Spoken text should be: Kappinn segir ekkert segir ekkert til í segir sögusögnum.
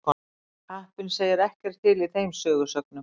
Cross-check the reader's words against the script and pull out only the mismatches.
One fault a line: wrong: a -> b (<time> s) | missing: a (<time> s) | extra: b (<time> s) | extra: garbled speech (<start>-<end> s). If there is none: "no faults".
missing: segir ekkert (1.8 s)
wrong: segir -> þeim (2.1 s)